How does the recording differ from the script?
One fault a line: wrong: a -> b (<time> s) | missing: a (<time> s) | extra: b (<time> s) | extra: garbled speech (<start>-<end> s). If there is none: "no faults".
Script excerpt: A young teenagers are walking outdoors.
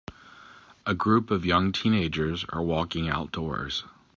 extra: group of (0.9 s)